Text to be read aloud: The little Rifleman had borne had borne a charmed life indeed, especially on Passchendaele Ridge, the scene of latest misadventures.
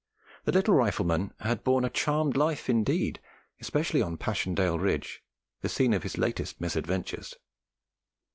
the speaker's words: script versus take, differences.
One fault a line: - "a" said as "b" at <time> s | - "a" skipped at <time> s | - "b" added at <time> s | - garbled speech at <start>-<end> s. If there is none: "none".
- "had borne" skipped at 1.9 s
- "his" added at 6.0 s